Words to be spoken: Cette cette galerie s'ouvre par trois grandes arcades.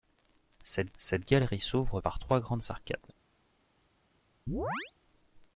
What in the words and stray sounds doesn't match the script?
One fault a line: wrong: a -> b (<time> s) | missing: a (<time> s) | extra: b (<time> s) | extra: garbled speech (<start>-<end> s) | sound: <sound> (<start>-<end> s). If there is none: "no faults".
sound: chirp (4.5-4.9 s)